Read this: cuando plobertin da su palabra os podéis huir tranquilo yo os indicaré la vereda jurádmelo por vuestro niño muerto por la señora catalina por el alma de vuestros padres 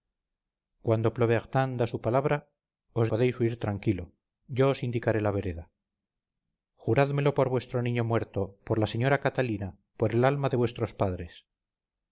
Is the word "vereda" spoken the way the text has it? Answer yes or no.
yes